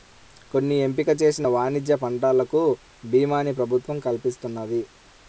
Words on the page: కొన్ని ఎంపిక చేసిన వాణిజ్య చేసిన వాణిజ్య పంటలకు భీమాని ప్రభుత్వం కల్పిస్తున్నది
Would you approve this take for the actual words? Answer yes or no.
no